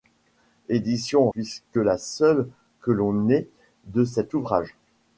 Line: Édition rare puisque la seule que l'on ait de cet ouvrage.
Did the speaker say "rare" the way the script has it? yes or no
no